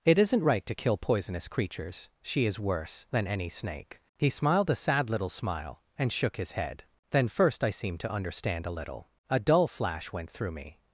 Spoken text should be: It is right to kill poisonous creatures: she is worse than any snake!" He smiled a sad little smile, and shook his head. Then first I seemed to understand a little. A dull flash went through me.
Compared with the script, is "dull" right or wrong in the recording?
right